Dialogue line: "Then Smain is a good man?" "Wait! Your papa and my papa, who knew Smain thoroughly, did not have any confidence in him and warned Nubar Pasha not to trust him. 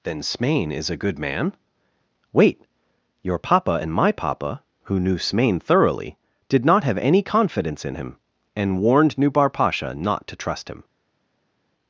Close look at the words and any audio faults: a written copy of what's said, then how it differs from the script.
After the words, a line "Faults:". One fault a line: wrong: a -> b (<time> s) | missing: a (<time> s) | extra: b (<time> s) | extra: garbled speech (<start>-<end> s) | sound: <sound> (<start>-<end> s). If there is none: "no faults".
"Then Smain is a good man?" "Wait! Your papa and my papa, who knew Smain thoroughly, did not have any confidence in him and warned Nubar Pasha not to trust him.
Faults:
no faults